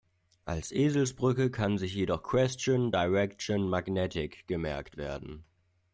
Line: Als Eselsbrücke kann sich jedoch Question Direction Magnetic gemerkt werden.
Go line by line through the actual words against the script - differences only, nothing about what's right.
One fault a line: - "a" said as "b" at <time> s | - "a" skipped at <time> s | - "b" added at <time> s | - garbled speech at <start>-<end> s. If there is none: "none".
none